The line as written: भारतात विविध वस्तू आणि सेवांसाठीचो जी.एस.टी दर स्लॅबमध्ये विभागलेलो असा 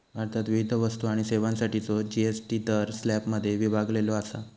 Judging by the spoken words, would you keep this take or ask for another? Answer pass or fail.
pass